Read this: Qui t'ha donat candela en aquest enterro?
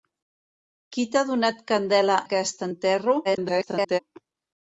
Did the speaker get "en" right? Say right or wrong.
wrong